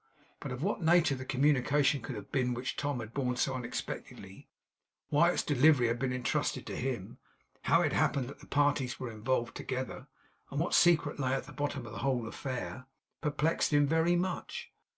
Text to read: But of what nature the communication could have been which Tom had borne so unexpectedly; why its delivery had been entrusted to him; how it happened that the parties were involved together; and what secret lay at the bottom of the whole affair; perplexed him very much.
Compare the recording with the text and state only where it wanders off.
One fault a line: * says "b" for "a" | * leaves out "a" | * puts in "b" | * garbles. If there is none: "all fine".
all fine